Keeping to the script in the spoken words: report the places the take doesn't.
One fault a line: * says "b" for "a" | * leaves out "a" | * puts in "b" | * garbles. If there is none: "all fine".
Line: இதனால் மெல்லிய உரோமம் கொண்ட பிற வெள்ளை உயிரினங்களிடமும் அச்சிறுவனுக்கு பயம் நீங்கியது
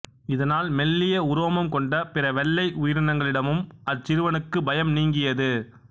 all fine